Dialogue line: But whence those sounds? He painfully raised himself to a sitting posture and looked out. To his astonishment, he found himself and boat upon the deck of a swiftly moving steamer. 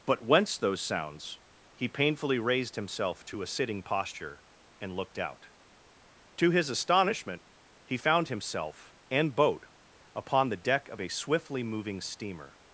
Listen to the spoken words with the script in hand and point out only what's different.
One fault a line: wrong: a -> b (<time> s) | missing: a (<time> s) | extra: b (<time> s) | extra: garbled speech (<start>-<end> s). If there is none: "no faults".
no faults